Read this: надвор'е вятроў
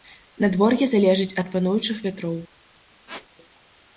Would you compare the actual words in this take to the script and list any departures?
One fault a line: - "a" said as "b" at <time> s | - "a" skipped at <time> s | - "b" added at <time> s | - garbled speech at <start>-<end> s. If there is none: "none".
- "залежыць ад пануючых" added at 0.9 s